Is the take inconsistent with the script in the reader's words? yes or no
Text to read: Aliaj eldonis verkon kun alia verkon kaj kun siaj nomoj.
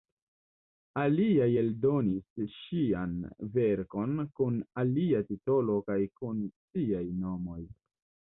yes